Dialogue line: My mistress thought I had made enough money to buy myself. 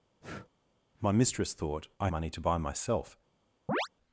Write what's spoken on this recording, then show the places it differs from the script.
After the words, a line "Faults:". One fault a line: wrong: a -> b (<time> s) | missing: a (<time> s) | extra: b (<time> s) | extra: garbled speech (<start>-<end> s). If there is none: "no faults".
My mistress thought I money to buy myself.
Faults:
missing: had made enough (2.1 s)